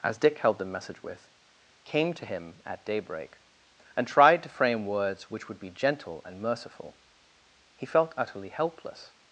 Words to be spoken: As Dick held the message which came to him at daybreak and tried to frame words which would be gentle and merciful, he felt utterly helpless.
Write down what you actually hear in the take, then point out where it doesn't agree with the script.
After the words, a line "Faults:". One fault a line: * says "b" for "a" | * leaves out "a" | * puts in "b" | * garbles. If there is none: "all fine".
As Dick held the message with came to him at daybreak and tried to frame words which would be gentle and merciful, he felt utterly helpless.
Faults:
* says "with" for "which"